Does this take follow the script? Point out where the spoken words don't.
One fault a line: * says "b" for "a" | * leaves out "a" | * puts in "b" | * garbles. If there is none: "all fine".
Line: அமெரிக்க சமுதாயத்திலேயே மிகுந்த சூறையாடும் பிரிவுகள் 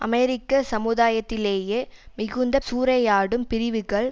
all fine